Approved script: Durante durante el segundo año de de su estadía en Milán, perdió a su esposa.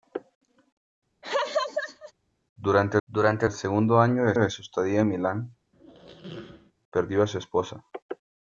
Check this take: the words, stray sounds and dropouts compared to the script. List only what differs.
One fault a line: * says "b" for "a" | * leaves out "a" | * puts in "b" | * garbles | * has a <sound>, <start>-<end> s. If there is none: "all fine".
* has a laugh, 1.2-2.1 s
* has a squeak, 5.7-6.7 s